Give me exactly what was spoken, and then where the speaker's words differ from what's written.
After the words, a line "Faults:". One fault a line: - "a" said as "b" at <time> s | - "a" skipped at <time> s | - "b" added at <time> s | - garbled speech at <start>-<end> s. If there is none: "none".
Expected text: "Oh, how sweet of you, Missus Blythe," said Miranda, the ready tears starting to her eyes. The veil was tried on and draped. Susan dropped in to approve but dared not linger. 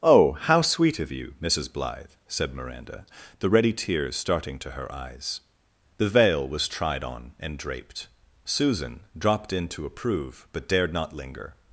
"Oh, how sweet of you, Missus Blythe," said Miranda, the ready tears starting to her eyes. The veil was tried on and draped. Susan dropped in to approve but dared not linger.
Faults:
none